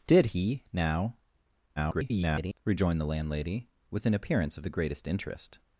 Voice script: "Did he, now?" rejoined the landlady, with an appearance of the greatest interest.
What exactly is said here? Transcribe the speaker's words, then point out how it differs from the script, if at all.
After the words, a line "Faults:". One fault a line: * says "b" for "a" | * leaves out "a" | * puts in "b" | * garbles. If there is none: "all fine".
"Did he, now?" [garbled] rejoined the landlady, with an appearance of the greatest interest.
Faults:
* garbles